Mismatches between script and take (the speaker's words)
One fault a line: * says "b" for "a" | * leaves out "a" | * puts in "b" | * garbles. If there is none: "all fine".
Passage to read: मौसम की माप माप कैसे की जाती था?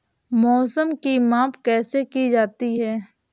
* leaves out "माप"
* says "है" for "था"